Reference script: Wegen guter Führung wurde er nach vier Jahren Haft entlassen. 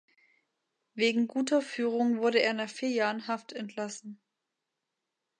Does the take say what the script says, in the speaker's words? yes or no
yes